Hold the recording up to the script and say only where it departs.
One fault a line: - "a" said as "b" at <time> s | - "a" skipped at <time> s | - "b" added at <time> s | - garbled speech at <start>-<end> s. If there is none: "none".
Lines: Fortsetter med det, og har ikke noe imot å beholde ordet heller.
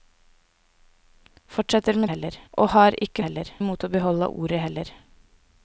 - "det" said as "heller" at 2.1 s
- "noe" said as "heller" at 3.2 s